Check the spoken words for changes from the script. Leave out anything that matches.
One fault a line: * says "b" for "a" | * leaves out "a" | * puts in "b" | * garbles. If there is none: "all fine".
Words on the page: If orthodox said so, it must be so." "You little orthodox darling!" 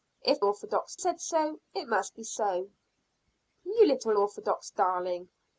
all fine